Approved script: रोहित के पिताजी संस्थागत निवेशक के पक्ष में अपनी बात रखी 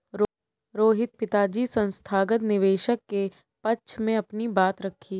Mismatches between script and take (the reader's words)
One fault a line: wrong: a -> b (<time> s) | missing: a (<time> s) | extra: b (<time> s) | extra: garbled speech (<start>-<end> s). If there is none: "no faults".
missing: के (1.1 s)